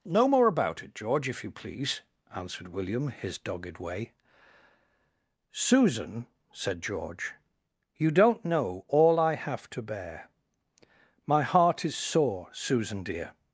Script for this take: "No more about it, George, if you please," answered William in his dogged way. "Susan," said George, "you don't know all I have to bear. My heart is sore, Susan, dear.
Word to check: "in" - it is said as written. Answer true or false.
false